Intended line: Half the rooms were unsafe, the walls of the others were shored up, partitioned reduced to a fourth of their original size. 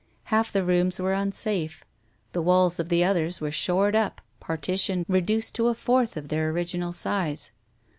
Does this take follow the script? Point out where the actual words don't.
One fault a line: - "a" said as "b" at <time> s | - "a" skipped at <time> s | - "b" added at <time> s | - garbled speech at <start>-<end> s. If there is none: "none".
none